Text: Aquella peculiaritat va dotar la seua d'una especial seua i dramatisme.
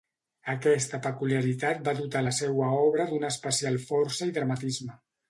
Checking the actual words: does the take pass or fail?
fail